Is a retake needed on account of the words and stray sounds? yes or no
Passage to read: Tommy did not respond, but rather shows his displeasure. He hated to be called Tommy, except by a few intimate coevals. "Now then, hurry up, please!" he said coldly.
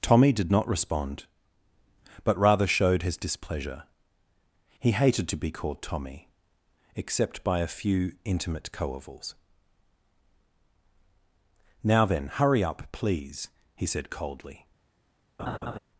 yes